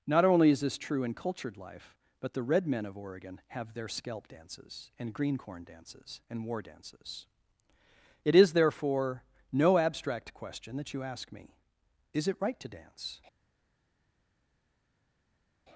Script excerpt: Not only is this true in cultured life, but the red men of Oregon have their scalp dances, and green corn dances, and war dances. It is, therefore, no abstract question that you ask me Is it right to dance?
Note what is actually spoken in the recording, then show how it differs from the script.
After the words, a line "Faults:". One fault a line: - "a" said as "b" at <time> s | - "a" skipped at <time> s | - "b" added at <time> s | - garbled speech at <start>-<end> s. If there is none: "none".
Not only is this true in cultured life, but the red men of Oregon have their scalp dances, and green corn dances, and war dances. It is, therefore, no abstract question that you ask me Is it right to dance?
Faults:
none